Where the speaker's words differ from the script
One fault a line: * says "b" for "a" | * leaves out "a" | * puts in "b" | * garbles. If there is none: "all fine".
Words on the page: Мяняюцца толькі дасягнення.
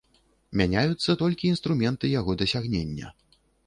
* puts in "інструменты яго"